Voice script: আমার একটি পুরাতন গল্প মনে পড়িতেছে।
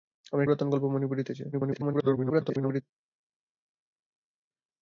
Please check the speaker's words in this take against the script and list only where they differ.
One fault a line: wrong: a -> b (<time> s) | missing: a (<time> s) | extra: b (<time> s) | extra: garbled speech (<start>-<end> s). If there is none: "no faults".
missing: একটি (0.4 s)
extra: garbled speech (1.5-2.8 s)